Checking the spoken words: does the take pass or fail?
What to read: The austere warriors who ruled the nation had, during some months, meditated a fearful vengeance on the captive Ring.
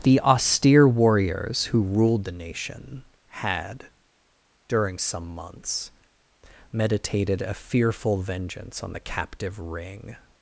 pass